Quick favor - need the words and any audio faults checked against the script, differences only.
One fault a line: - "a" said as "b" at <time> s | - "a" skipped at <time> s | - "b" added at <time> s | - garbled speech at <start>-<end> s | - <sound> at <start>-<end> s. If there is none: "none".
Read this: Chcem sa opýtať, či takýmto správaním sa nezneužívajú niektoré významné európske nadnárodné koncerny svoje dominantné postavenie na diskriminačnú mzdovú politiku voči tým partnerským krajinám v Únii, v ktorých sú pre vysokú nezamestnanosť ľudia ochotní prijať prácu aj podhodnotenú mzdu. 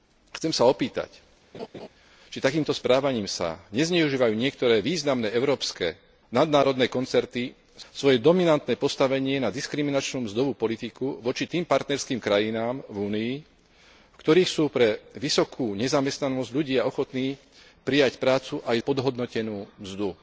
- laugh at 1.5-1.9 s